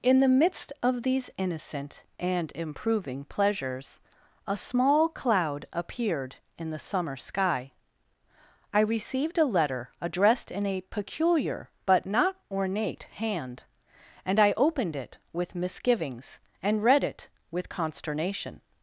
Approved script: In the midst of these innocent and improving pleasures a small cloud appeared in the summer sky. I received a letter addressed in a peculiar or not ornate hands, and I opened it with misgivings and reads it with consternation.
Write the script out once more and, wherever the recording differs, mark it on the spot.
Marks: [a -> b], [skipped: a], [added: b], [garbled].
In the midst of these innocent and improving pleasures a small cloud appeared in the summer sky. I received a letter addressed in a peculiar [or -> but] not ornate [hands, -> hand] and I opened it with misgivings and [reads -> read] it with consternation.